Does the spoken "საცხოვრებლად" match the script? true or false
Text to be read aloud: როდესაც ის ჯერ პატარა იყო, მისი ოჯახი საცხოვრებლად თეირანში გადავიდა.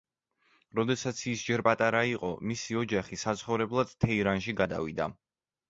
true